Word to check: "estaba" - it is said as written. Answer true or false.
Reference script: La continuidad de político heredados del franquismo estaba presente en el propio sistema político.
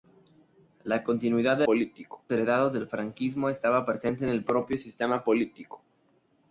true